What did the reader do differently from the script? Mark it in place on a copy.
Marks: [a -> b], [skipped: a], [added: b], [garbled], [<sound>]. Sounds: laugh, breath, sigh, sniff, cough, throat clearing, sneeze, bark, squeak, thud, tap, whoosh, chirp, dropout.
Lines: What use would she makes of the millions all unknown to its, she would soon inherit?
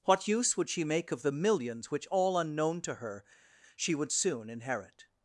What use would she [makes -> make] of the millions [added: which] all unknown to [its, -> her] she would soon inherit?